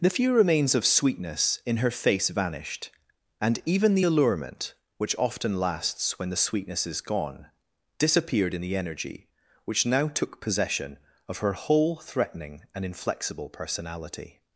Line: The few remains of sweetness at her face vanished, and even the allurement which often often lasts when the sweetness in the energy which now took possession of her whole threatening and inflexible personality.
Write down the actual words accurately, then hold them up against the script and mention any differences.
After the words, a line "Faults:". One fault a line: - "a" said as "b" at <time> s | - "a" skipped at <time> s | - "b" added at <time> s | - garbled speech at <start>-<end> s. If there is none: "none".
The few remains of sweetness in her face vanished, and even the allurement which often lasts when the sweetness is gone, disappeared in the energy which now took possession of her whole threatening and inflexible personality.
Faults:
- "at" said as "in" at 1.6 s
- "often" skipped at 5.6 s
- "is gone disappeared" added at 6.8 s